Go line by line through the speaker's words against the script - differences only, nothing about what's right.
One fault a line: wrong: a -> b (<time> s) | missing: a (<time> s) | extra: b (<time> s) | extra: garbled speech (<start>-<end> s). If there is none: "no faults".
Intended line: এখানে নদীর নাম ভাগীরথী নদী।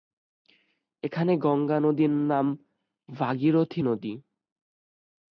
extra: গঙ্গা (1.4 s)